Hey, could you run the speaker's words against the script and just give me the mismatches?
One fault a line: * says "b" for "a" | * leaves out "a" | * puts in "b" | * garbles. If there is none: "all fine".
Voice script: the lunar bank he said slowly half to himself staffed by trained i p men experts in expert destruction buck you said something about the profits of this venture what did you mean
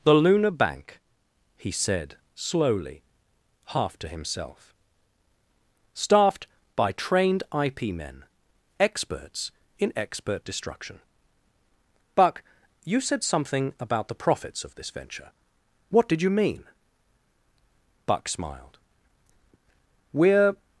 * puts in "buck smiled we're"